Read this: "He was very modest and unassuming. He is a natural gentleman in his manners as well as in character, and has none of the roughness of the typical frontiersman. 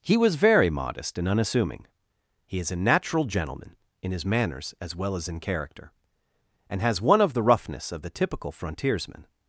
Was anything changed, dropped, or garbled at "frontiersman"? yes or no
no